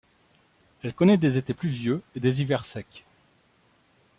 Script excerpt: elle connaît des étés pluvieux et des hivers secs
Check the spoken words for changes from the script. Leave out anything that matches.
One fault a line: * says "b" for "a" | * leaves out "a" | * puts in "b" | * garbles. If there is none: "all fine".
all fine